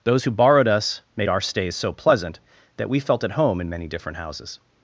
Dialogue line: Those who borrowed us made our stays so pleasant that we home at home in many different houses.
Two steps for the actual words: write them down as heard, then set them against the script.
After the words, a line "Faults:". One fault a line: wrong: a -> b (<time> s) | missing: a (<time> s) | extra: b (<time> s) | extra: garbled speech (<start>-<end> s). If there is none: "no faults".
Those who borrowed us made our stays so pleasant that we felt at home in many different houses.
Faults:
wrong: home -> felt (3.0 s)